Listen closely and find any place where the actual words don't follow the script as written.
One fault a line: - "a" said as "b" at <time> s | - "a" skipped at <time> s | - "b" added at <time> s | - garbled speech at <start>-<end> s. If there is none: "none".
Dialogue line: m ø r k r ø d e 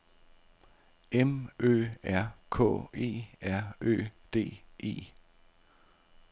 - "e" added at 2.9 s